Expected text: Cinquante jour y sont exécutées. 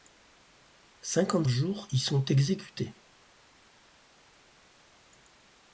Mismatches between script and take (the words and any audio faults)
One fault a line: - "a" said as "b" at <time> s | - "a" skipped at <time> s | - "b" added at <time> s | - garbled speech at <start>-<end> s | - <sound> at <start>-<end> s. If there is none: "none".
none